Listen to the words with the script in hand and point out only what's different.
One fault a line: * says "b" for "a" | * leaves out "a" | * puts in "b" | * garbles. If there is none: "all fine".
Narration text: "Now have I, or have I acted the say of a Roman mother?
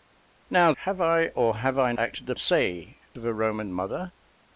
all fine